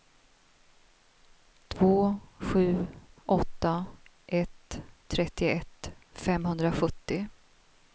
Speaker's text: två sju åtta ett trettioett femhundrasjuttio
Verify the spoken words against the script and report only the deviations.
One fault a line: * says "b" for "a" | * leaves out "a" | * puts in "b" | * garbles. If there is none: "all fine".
all fine